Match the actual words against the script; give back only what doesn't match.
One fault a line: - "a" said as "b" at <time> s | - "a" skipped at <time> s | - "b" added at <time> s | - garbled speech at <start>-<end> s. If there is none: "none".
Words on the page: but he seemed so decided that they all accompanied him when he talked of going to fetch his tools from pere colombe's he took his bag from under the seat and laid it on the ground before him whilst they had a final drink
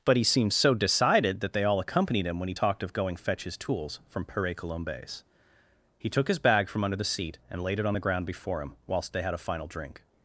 - "to" skipped at 3.2 s